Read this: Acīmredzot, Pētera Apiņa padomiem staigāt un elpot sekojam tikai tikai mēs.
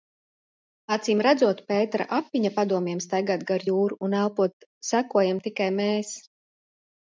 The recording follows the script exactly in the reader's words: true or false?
false